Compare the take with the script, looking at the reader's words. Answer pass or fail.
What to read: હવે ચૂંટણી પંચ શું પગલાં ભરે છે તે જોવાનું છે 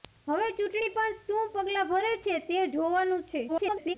fail